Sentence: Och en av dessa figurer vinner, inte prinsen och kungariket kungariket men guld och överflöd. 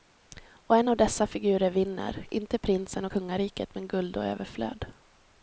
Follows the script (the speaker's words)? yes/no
no